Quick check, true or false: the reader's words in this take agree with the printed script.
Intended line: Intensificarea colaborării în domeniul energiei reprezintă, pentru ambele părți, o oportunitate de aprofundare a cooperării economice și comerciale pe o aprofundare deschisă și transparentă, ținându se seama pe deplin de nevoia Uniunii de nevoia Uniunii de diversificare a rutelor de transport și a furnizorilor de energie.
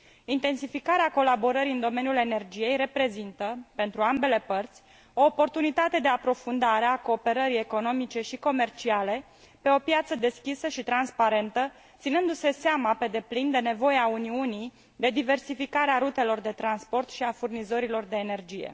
false